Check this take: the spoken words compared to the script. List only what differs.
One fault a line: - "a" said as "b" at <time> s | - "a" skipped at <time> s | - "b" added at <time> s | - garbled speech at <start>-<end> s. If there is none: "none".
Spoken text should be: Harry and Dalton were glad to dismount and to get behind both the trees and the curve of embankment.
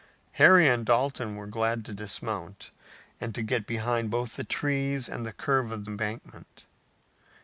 none